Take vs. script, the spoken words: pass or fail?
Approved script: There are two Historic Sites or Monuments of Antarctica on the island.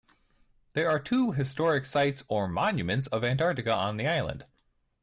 pass